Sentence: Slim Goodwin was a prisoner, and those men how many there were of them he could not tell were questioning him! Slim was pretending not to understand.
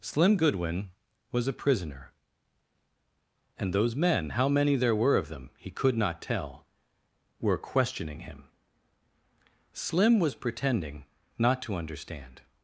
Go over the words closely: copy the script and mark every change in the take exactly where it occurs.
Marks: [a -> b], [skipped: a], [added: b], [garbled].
Slim Goodwin was a prisoner, and those men how many there were of them he could not tell were questioning him! Slim was pretending not to understand.